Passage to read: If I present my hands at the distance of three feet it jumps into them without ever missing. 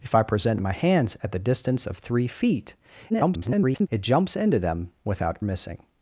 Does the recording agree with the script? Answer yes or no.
no